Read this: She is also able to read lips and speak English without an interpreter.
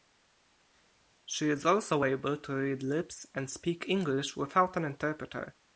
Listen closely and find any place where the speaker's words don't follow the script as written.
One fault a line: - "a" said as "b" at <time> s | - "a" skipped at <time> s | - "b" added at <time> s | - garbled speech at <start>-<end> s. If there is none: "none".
none